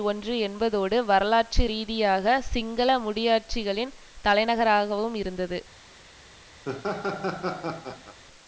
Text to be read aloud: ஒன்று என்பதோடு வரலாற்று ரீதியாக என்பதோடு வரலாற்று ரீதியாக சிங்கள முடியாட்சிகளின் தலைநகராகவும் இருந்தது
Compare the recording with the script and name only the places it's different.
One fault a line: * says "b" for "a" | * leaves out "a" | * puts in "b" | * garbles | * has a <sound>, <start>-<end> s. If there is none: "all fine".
* leaves out "என்பதோடு வரலாற்று ரீதியாக"
* has a laugh, 6.6-8.2 s